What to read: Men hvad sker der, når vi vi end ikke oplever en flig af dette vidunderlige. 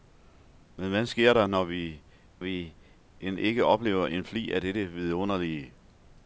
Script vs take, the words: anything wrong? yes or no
no